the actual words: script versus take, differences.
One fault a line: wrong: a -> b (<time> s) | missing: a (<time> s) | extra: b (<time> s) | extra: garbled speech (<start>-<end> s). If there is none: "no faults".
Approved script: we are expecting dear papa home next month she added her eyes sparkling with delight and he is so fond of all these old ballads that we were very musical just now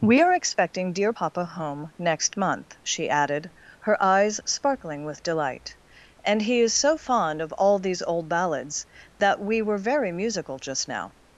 no faults